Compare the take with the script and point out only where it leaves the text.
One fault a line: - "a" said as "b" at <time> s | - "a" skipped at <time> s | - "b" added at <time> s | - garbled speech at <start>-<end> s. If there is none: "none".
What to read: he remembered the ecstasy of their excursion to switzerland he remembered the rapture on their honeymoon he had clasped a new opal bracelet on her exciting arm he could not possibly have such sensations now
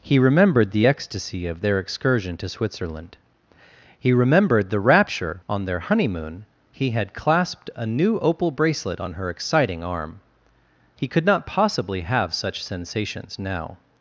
none